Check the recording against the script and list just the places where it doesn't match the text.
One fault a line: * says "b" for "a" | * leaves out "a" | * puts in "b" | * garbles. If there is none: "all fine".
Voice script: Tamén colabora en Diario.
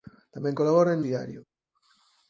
all fine